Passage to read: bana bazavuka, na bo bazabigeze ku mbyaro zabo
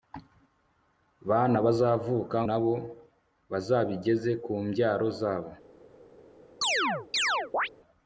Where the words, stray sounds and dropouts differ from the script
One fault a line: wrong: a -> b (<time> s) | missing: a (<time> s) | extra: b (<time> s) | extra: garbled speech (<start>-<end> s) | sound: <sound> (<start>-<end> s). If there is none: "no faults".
sound: chirp (6.6-7.7 s)